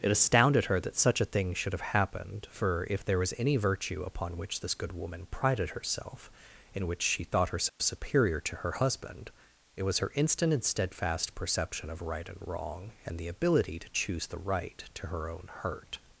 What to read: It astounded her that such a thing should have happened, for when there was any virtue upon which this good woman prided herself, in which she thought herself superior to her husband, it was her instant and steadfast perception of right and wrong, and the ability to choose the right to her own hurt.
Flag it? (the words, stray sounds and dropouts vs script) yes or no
yes